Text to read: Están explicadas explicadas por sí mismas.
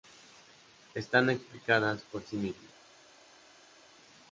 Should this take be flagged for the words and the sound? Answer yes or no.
yes